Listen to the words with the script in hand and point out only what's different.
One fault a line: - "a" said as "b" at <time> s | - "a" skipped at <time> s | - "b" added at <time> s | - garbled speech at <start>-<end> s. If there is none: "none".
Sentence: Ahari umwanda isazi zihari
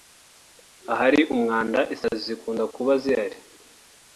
- "zikunda kuba" added at 2.3 s